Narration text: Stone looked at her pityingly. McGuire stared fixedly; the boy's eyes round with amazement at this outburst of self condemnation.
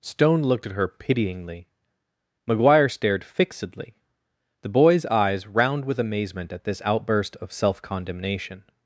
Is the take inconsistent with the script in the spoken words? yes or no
no